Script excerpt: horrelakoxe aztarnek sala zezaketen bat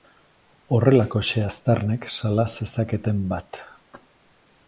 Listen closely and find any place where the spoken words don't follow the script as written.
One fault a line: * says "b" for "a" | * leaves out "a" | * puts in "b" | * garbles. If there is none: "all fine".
all fine